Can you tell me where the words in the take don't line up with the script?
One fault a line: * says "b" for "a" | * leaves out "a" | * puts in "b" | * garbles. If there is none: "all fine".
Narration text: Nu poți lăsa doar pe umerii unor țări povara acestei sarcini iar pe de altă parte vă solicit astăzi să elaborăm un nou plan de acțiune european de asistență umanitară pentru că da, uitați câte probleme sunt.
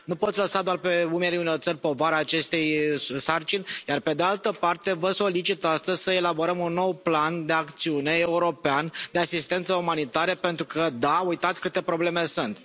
all fine